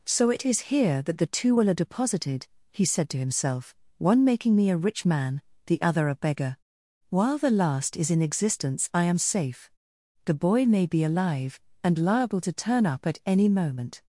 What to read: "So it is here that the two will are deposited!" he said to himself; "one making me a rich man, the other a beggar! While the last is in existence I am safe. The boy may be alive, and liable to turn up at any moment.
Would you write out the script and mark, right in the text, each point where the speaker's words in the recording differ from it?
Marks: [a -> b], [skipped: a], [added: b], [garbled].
"So it is here that the two will are deposited!" he said to himself; "one making me a rich man, the other a beggar! While the last is in existence I am safe. The boy may be alive, and liable to turn up at any moment.